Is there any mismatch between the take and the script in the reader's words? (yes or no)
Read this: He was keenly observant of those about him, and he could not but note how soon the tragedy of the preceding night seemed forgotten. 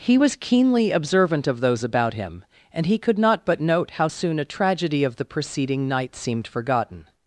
yes